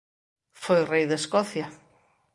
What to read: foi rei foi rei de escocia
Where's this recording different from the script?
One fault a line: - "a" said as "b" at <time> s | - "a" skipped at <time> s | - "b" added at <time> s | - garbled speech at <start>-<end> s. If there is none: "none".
- "foi rei" skipped at 1.1 s